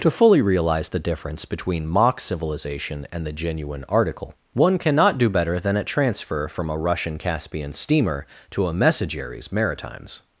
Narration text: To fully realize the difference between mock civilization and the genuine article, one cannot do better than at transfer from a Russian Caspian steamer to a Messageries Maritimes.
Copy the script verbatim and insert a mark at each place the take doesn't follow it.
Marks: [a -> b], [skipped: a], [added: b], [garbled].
To fully realize the difference between mock civilization and the genuine article, one cannot do better than at transfer from a Russian Caspian steamer to a Messageries Maritimes.